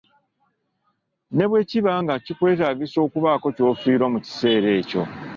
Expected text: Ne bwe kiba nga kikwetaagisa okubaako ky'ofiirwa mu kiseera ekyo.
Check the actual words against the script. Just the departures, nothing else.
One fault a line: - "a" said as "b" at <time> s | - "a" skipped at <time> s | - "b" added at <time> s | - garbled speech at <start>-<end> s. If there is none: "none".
none